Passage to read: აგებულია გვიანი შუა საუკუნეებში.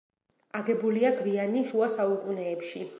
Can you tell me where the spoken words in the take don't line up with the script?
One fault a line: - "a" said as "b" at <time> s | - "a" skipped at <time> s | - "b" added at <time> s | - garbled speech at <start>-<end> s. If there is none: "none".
none